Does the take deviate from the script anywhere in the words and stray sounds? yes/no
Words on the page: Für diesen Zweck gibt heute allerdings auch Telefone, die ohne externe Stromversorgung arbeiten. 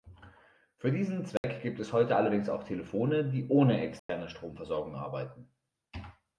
yes